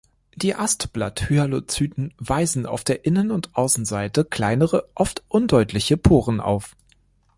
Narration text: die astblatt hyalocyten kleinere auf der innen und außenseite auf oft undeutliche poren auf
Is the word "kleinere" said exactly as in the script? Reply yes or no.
no